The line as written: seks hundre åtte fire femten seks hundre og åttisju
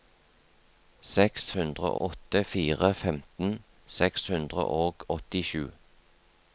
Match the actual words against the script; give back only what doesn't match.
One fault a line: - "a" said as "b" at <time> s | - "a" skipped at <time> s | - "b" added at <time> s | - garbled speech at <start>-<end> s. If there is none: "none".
none